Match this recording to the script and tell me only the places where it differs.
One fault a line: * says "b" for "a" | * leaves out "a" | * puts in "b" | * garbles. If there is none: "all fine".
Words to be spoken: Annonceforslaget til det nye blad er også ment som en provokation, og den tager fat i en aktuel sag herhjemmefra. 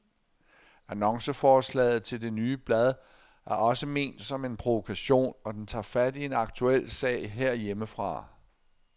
all fine